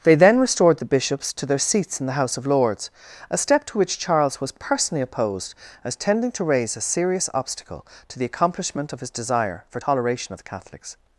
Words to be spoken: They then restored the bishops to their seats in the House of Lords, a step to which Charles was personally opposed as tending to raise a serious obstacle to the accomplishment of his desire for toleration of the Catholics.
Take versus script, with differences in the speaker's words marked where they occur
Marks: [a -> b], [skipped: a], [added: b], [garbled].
They then restored the bishops to their seats in the House of Lords, a step to which Charles was personally opposed as tending to raise a serious obstacle to the accomplishment of his desire for toleration of the Catholics.